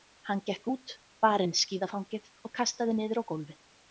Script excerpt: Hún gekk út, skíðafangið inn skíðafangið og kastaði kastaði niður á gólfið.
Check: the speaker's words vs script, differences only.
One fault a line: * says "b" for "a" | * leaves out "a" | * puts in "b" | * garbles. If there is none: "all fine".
* says "Hann" for "Hún"
* says "bar" for "skíðafangið"
* leaves out "kastaði"